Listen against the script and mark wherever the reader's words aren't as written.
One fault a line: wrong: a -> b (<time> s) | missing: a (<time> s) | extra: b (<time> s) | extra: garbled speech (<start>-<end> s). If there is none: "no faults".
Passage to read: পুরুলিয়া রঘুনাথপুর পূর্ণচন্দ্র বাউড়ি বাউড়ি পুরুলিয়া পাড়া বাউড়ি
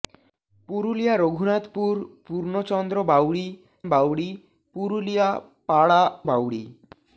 no faults